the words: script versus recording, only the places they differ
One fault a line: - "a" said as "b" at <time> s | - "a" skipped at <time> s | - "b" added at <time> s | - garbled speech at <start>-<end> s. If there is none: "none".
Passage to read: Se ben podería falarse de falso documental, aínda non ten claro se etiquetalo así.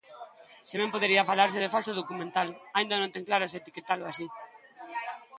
none